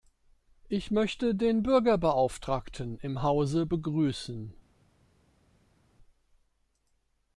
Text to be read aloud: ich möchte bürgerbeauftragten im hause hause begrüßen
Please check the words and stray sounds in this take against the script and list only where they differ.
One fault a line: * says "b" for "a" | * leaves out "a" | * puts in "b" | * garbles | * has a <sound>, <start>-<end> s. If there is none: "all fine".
* puts in "den"
* leaves out "hause"